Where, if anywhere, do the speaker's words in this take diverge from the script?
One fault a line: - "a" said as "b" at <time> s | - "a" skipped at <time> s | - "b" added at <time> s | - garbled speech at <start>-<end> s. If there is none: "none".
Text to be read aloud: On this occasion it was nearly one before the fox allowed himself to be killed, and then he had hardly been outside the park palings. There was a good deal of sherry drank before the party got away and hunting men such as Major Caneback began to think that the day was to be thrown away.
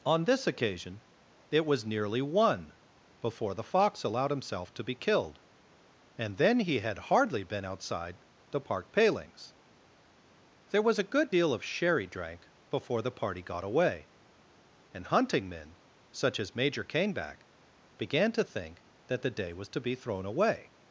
none